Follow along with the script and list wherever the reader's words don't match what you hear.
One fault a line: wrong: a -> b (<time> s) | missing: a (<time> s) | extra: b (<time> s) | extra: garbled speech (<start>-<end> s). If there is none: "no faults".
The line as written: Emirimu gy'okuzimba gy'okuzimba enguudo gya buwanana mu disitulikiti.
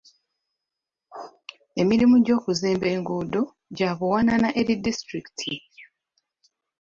missing: gy'okuzimba (2.9 s)
wrong: mu -> eri (4.6 s)